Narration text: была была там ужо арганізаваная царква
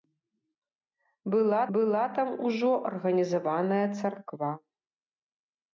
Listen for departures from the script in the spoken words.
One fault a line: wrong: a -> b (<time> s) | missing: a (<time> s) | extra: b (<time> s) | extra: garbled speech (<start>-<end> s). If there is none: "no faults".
no faults